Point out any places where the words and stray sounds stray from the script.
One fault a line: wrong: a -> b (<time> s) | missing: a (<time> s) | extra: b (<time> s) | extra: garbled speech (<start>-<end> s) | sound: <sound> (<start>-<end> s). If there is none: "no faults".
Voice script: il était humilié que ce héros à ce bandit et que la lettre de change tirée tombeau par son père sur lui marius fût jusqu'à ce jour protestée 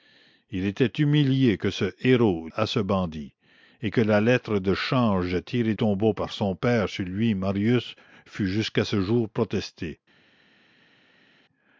no faults